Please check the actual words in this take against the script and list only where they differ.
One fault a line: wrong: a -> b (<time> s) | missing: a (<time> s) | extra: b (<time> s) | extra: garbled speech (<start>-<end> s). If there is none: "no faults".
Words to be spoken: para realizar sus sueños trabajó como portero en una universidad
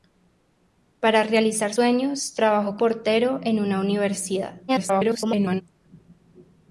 missing: sus (1.8 s)
missing: como (2.8 s)
extra: garbled speech (4.7-5.6 s)